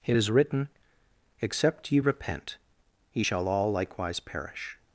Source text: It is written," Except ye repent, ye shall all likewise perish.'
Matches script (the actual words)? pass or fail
pass